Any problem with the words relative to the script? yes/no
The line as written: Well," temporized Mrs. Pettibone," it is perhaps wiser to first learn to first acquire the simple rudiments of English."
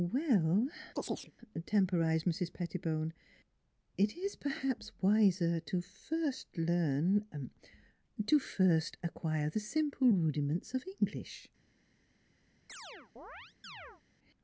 no